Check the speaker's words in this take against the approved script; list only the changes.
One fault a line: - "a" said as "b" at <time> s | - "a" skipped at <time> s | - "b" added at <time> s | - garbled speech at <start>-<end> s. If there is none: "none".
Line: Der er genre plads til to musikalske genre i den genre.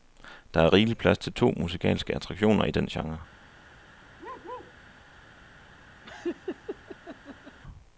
- "genre" said as "rigelig" at 0.7 s
- "genre" said as "attraktioner" at 2.1 s